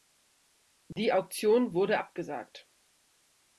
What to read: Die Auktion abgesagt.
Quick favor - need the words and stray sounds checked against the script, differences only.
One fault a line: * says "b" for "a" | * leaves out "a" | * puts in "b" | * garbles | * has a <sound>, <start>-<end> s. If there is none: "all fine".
* has a dropout, 0.9-1.0 s
* puts in "wurde"